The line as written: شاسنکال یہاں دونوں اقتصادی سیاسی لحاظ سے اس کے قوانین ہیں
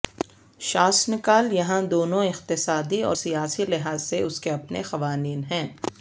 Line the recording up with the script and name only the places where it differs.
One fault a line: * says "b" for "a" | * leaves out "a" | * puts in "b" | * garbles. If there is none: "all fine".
* puts in "اور"
* puts in "اپنے"